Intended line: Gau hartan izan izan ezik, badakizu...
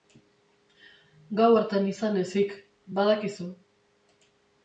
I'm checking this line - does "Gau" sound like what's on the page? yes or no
yes